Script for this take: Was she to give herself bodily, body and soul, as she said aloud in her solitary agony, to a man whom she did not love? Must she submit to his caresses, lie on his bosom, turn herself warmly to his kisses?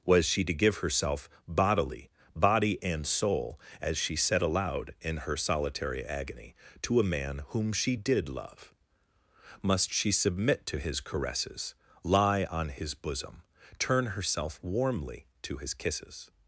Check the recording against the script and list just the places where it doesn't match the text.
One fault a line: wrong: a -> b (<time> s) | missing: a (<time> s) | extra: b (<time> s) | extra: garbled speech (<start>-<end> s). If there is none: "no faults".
missing: not (8.3 s)